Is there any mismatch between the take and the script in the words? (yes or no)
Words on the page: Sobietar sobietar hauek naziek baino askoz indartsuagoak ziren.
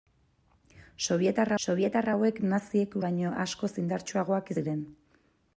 no